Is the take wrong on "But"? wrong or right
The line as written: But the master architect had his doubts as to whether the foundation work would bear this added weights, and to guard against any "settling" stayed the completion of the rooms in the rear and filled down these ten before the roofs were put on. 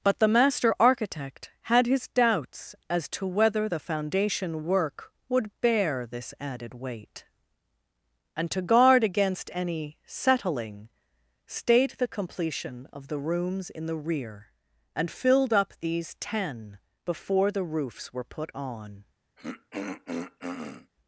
right